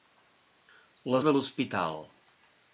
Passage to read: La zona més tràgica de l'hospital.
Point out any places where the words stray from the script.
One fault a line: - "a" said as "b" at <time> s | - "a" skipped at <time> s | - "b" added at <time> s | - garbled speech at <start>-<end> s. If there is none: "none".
- "zona més tràgica" skipped at 1.2 s